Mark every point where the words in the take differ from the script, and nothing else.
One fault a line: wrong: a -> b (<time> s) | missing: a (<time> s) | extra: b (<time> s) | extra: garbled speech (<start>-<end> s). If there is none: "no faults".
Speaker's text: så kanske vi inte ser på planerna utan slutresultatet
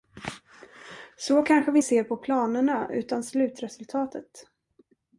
missing: inte (1.8 s)